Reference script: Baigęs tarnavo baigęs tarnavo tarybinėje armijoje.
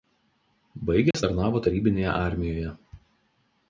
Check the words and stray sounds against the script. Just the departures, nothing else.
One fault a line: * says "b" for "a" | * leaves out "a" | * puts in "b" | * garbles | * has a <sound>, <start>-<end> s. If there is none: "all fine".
* has a dropout, 1.1-1.1 s
* leaves out "baigęs tarnavo"